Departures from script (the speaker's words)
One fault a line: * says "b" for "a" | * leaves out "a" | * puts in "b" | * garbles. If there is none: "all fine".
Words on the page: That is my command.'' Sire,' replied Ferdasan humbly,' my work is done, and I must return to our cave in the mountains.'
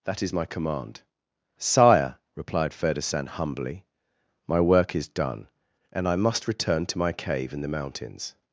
* says "my" for "our"